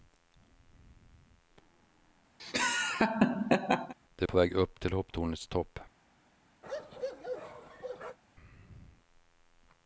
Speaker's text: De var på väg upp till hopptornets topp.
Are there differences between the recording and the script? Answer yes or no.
yes